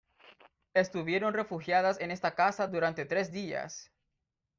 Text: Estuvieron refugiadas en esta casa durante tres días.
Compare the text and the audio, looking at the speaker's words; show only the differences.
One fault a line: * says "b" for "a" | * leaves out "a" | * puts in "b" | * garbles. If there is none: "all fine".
all fine